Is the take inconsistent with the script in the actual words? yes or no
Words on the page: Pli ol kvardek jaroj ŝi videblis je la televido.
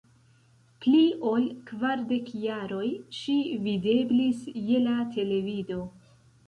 no